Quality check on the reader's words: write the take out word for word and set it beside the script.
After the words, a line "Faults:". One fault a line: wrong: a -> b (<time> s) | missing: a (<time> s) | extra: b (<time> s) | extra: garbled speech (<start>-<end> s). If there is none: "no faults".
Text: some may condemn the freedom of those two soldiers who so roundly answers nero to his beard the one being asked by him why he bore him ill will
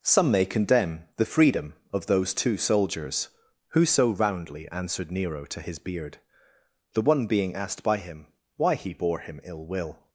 some may condemn the freedom of those two soldiers who so roundly answered nero to his beard the one being asked by him why he bore him ill will
Faults:
wrong: answers -> answered (4.7 s)